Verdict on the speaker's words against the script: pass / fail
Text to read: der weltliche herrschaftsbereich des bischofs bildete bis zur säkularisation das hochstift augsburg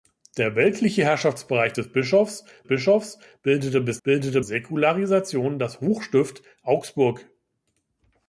fail